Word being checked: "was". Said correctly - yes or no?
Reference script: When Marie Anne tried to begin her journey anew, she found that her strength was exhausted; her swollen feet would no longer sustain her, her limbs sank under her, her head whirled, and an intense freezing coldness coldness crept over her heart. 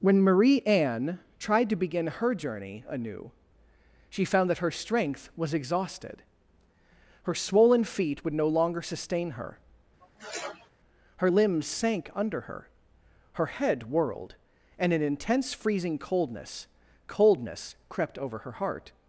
yes